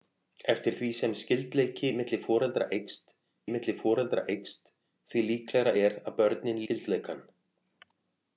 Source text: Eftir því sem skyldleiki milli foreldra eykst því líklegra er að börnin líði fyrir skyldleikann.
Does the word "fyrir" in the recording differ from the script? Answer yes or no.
yes